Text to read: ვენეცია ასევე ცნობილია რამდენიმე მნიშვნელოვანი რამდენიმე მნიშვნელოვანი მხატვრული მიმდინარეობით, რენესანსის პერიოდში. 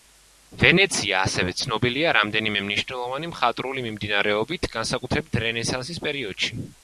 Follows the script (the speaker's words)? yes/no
no